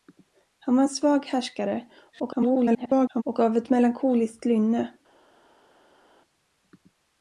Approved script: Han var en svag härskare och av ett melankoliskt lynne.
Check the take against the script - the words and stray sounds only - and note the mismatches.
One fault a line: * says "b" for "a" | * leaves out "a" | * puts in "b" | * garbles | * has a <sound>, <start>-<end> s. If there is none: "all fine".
* garbles